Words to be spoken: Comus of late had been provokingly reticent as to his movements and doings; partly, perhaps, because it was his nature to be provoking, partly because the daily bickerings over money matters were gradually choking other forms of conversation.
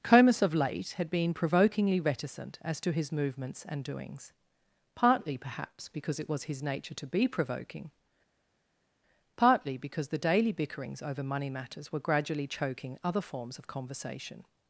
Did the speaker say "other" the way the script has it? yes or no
yes